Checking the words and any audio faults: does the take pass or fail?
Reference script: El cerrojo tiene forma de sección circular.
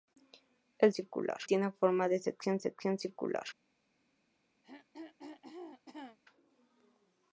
fail